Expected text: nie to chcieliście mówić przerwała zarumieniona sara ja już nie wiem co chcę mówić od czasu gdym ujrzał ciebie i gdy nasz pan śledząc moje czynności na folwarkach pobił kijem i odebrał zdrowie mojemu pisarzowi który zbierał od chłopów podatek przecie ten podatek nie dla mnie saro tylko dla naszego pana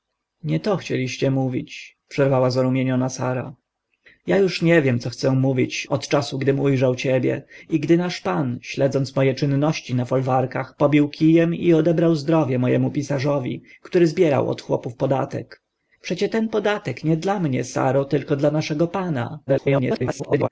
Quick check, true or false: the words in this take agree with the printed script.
false